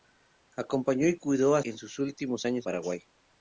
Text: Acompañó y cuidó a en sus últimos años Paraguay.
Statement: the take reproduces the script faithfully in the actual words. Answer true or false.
true